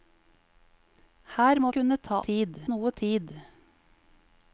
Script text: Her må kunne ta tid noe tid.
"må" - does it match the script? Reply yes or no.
yes